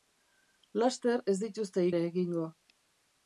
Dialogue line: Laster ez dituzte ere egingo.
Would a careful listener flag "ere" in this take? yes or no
no